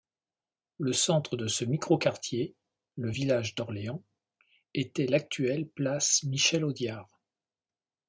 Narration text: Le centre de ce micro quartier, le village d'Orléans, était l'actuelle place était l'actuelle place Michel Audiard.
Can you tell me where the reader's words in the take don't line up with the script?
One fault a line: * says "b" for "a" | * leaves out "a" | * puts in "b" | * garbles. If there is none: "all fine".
* leaves out "était l'actuelle place"